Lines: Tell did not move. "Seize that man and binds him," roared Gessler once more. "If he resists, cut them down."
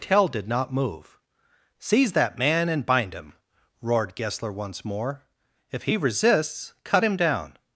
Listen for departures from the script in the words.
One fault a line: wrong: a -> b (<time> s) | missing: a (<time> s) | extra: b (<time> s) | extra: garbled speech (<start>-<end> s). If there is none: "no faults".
wrong: binds -> bind (2.9 s)
wrong: them -> him (7.0 s)